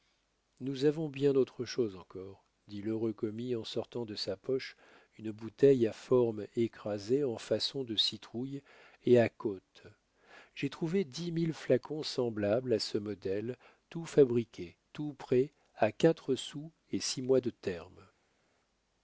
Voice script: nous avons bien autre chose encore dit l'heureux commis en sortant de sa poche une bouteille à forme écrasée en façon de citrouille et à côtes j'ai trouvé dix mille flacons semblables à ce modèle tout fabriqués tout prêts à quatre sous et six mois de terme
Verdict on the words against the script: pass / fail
pass